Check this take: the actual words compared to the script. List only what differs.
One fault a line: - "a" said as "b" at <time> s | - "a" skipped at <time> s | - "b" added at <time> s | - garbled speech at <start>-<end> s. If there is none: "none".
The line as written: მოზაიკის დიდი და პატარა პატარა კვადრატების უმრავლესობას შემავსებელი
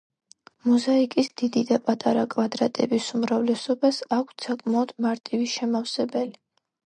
- "პატარა" skipped at 2.2 s
- "აქვთ საკმაოდ მარტივი" added at 4.2 s